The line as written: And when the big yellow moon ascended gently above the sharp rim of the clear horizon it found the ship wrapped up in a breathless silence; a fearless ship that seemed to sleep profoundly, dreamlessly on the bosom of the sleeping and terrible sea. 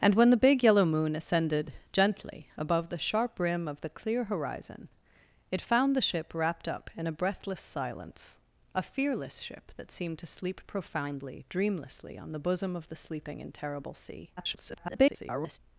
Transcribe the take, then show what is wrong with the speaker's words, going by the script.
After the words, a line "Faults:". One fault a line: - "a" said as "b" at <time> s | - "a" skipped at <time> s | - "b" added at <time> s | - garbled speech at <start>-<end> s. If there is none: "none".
And when the big yellow moon ascended gently above the sharp rim of the clear horizon it found the ship wrapped up in a breathless silence; a fearless ship that seemed to sleep profoundly, dreamlessly on the bosom of the sleeping and terrible sea. [garbled]
Faults:
- garbled speech at 14.4-15.6 s